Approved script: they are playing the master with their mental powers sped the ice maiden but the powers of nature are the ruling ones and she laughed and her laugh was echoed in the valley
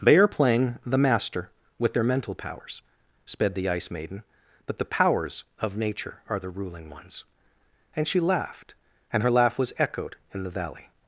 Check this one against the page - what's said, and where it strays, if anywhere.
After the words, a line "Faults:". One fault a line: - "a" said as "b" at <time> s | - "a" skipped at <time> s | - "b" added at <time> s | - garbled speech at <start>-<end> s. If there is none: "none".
they are playing the master with their mental powers sped the ice maiden but the powers of nature are the ruling ones and she laughed and her laugh was echoed in the valley
Faults:
none